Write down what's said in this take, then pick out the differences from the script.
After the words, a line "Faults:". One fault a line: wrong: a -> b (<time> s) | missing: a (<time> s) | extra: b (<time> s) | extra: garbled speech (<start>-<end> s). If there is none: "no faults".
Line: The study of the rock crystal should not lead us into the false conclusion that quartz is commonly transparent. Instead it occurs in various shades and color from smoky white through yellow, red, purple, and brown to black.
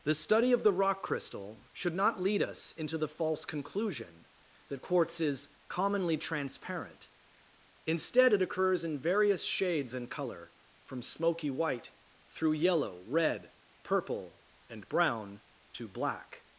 The study of the rock crystal should not lead us into the false conclusion that quartz is commonly transparent. Instead it occurs in various shades and color from smoky white through yellow, red, purple, and brown to black.
Faults:
no faults